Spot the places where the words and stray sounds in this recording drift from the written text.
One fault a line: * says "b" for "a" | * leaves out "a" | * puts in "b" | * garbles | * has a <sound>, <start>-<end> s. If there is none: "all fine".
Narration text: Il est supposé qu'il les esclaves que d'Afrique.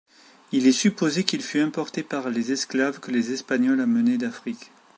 * puts in "fut importé par"
* puts in "les Espagnols amenaient"